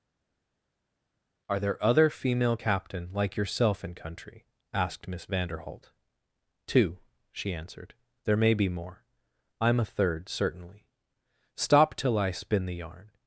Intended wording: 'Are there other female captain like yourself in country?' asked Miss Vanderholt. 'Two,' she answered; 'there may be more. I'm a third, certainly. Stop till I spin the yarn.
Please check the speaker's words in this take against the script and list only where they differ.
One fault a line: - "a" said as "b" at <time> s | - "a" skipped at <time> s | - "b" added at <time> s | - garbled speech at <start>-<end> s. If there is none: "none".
none